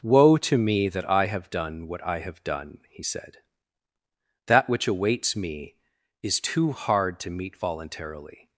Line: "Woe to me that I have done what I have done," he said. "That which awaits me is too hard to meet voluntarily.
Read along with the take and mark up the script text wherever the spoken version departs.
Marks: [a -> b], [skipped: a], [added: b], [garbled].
"Woe to me that I have done what I have done," he said. "That which awaits me is too hard to meet voluntarily.